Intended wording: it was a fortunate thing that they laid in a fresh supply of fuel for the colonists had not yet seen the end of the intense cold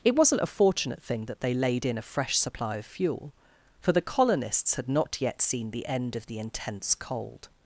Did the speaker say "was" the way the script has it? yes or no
no